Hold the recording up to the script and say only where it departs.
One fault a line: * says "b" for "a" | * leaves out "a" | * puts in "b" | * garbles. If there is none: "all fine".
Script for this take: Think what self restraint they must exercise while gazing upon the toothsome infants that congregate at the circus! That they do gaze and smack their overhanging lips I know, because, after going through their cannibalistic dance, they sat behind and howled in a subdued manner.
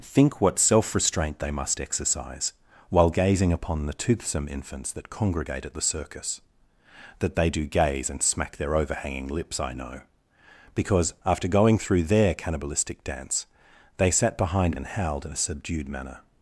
all fine